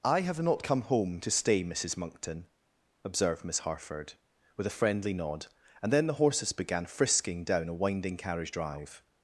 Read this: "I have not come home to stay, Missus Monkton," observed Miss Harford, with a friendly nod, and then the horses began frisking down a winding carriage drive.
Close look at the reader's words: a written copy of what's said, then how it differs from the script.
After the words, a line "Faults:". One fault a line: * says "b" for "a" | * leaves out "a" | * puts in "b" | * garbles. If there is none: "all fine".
"I have not come home to stay, Missus Monkton," observed Miss Harford, with a friendly nod, and then the horses began frisking down a winding carriage drive.
Faults:
all fine